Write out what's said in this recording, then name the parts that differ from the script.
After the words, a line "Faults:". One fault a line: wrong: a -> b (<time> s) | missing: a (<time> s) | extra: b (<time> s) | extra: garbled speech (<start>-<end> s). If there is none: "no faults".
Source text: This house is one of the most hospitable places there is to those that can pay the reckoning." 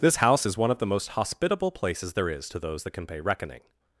This house is one of the most hospitable places there is to those that can pay reckoning."
Faults:
missing: the (3.2 s)